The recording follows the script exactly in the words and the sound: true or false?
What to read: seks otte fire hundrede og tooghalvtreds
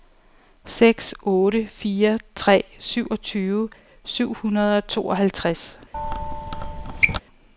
false